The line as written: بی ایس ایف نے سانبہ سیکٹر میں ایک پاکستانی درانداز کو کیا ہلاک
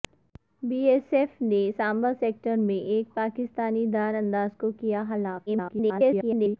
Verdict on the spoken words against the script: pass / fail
fail